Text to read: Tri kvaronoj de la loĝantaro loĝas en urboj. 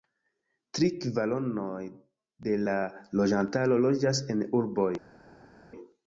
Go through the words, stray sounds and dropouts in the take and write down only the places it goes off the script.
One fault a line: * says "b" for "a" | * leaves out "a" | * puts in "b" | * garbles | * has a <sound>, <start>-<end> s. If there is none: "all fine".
all fine